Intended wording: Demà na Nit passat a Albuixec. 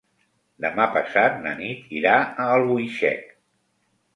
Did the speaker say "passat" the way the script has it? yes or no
no